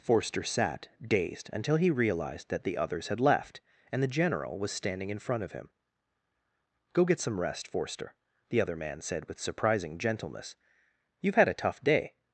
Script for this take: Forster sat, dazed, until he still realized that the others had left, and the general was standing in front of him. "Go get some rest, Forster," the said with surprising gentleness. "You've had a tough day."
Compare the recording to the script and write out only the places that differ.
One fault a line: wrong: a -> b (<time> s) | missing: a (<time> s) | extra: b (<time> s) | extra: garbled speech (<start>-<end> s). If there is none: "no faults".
missing: still (1.9 s)
extra: other man (8.6 s)